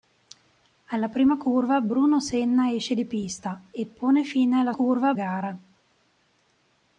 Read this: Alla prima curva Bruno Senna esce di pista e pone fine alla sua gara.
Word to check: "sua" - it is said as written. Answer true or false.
false